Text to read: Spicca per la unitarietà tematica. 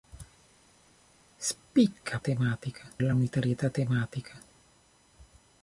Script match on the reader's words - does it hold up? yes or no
no